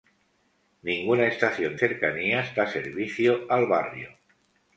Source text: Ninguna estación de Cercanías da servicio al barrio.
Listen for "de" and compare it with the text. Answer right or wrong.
wrong